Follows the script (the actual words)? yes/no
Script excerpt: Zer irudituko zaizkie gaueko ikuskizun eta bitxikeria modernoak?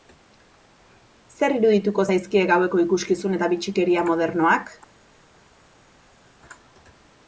yes